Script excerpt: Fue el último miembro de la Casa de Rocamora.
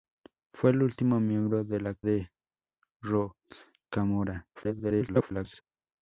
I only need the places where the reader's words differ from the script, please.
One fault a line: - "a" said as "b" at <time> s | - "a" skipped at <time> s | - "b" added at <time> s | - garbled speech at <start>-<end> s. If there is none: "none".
- "Casa" skipped at 1.9 s
- garbled speech at 4.5-5.6 s